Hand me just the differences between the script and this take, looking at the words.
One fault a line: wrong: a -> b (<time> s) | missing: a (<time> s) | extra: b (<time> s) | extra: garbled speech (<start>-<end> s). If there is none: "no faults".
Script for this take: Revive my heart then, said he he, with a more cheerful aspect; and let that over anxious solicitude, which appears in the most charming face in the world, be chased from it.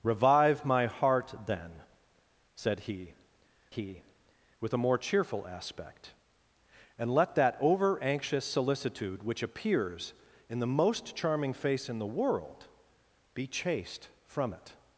no faults